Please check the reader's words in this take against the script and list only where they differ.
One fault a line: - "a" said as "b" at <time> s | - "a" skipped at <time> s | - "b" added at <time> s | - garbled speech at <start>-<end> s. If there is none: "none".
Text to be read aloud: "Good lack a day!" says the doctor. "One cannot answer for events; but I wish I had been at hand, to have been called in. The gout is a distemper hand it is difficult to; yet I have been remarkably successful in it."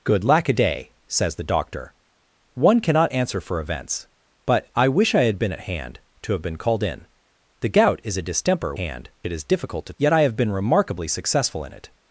none